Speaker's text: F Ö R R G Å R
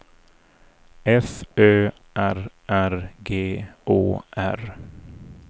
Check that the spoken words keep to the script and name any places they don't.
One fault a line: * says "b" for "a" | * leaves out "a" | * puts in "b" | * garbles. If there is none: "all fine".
all fine